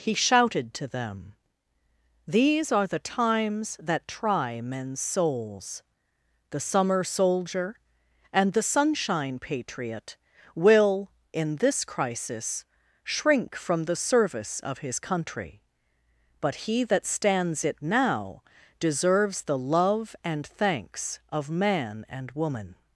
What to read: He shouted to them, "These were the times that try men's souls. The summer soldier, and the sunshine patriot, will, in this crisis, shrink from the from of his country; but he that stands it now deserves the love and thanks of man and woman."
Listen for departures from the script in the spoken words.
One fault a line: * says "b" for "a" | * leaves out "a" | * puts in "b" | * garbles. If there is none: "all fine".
* says "are" for "were"
* says "service" for "from"